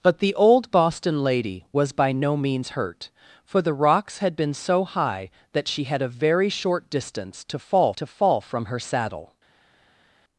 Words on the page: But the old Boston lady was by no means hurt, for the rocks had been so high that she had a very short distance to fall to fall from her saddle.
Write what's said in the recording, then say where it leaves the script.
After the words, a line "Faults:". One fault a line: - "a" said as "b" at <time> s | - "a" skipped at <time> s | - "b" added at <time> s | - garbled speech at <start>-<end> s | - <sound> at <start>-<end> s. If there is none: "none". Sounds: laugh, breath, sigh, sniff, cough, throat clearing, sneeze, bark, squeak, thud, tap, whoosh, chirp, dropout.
But the old Boston lady was by no means hurt, for the rocks had been so high that she had a very short distance to fall to fall from her saddle.
Faults:
none